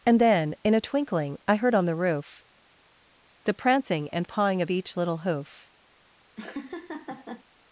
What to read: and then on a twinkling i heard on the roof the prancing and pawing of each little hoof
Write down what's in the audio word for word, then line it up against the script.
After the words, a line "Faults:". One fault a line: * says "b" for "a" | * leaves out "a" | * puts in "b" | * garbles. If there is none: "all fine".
and then in a twinkling i heard on the roof the prancing and pawing of each little hoof
Faults:
* says "in" for "on"